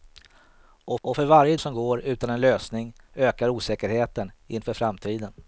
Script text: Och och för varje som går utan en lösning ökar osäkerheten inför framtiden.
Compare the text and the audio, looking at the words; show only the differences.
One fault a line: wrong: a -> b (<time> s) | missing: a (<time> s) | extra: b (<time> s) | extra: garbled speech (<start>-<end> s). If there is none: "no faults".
no faults